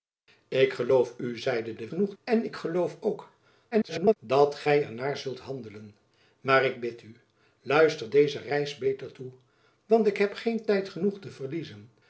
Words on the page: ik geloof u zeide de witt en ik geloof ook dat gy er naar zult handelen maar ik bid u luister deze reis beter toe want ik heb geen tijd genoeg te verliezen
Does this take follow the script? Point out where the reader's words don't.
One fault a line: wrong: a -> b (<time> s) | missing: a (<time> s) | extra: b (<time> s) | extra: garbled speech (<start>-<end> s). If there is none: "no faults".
wrong: witt -> genoeg (1.9 s)
extra: garbled speech (3.7-4.2 s)